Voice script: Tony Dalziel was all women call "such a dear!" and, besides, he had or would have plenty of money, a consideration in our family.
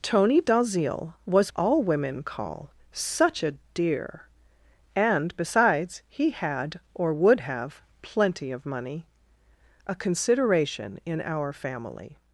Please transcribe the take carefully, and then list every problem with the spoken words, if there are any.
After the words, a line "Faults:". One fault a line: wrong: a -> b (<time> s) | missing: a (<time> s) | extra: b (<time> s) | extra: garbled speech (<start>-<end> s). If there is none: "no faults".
Tony Dalziel was all women call "such a dear!" and, besides, he had or would have plenty of money, a consideration in our family.
Faults:
no faults